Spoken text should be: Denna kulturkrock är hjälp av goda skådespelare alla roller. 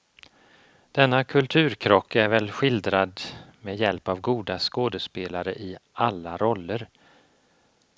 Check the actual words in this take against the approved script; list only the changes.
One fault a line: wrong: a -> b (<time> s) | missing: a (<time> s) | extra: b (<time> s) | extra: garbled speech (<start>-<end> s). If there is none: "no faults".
extra: väl skildrad med (2.3 s)
extra: i (5.5 s)